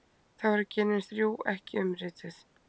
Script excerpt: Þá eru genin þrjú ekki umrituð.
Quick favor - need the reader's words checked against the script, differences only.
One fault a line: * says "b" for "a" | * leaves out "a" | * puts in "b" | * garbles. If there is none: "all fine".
all fine